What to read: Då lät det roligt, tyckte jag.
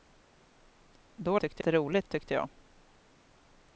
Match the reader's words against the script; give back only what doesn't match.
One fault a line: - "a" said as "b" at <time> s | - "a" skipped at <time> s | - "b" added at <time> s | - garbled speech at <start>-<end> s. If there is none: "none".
- "lät" said as "tyckte" at 1.4 s